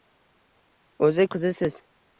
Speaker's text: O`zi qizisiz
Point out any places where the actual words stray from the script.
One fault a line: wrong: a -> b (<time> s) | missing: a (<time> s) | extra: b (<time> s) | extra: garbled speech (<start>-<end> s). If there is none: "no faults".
no faults